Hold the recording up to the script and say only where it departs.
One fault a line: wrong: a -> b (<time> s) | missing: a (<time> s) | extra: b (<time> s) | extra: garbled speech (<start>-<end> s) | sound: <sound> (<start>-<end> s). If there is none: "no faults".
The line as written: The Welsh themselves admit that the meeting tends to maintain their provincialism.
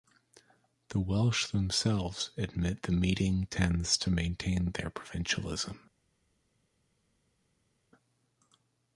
missing: that (2.8 s)